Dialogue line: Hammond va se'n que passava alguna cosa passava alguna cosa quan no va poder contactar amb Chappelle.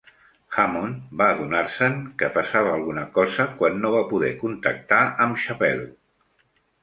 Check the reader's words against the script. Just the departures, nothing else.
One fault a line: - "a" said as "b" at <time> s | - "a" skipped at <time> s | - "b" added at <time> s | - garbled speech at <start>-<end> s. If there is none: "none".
- "adonar" added at 1.3 s
- "passava alguna cosa" skipped at 3.5 s